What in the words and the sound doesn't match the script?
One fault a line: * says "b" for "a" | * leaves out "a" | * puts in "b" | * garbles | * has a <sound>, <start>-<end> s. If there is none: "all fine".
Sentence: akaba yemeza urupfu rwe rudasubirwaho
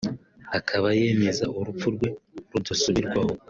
all fine